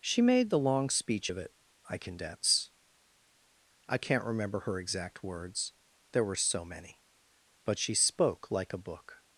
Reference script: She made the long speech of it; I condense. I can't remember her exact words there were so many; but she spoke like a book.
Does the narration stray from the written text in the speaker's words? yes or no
no